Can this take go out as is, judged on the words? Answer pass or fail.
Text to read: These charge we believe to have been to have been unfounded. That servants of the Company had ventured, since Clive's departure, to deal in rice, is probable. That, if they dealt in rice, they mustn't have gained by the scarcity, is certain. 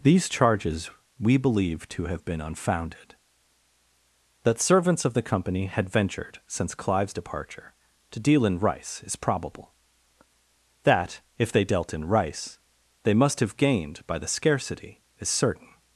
fail